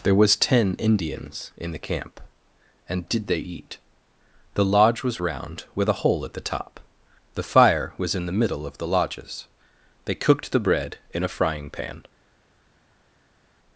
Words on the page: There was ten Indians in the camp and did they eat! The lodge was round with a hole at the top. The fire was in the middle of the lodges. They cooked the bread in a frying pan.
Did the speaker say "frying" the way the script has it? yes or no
yes